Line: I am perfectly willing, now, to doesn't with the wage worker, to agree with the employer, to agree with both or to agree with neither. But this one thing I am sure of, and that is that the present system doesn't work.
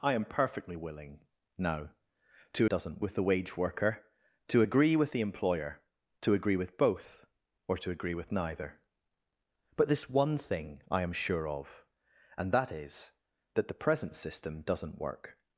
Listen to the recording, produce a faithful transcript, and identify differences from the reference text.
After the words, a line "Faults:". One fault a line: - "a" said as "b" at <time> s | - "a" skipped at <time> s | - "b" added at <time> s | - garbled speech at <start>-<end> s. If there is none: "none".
I am perfectly willing, now, to doesn't with the wage worker, to agree with the employer, to agree with both or to agree with neither. But this one thing I am sure of, and that is that the present system doesn't work.
Faults:
none